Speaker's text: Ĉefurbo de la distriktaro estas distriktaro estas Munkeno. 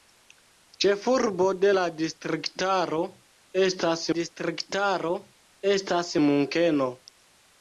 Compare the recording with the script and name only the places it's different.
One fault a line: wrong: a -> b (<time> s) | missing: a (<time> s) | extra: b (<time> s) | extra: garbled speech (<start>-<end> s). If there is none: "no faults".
no faults